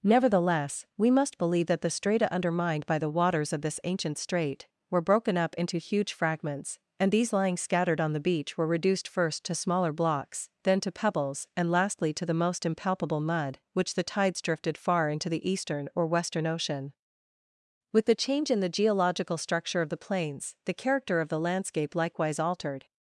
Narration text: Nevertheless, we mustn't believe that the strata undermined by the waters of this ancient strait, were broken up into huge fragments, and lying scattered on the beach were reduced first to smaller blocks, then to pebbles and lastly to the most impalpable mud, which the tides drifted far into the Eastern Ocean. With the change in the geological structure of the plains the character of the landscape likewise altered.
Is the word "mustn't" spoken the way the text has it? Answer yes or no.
no